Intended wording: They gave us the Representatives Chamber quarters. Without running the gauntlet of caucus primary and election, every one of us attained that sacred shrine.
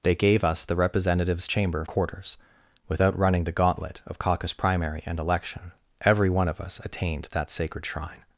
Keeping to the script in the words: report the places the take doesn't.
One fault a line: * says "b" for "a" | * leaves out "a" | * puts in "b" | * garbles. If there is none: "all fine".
all fine